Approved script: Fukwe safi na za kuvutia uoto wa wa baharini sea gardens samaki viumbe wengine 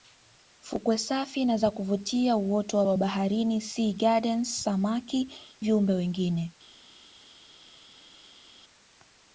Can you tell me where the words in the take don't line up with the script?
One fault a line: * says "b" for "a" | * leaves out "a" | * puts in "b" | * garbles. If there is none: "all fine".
all fine